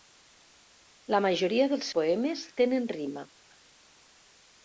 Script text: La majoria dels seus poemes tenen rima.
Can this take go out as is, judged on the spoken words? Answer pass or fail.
fail